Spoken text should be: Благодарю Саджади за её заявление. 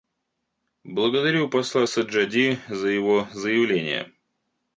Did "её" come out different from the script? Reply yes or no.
yes